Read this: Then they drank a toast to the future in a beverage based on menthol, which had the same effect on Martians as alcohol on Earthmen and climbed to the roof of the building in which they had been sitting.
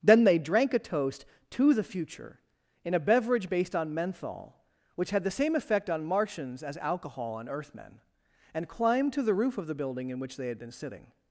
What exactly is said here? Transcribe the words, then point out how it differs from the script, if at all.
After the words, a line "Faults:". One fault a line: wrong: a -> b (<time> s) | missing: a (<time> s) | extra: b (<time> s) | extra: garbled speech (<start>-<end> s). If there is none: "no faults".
Then they drank a toast to the future in a beverage based on menthol, which had the same effect on Martians as alcohol on Earthmen and climbed to the roof of the building in which they had been sitting.
Faults:
no faults